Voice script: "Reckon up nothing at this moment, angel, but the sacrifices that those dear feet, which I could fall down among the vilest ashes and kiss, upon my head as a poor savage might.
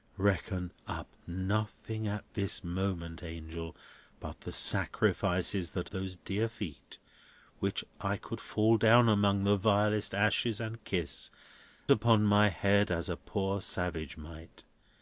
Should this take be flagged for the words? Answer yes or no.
no